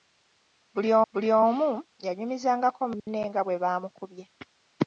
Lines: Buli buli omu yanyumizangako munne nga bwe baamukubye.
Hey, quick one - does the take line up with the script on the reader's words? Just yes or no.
yes